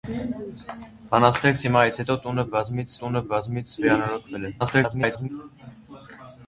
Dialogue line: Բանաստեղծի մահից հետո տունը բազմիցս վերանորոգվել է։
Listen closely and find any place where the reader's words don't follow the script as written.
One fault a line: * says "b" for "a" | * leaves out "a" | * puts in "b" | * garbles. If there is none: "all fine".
* puts in "տունը բազմիցս"
* garbles